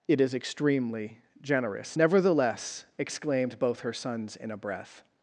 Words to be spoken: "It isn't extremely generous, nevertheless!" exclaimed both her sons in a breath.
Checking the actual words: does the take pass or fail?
fail